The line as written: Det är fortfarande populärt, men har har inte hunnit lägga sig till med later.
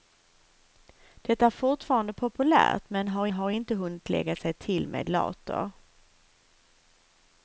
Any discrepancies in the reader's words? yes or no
no